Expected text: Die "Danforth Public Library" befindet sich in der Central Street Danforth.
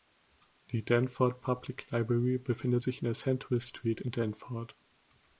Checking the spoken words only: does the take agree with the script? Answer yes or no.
no